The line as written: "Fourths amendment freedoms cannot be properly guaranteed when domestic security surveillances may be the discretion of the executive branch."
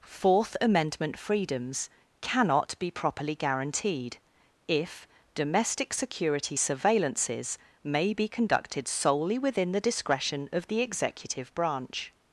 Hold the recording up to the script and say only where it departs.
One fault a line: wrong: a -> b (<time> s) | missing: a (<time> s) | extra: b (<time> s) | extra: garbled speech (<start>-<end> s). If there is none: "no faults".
wrong: Fourths -> Fourth (0.0 s)
wrong: when -> if (4.7 s)
extra: conducted solely within (8.3 s)